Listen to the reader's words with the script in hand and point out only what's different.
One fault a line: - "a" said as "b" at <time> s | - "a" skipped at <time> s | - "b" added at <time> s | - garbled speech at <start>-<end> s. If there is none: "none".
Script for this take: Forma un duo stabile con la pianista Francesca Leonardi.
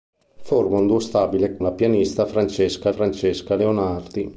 - "con" skipped at 1.6 s
- "Francesca" added at 2.9 s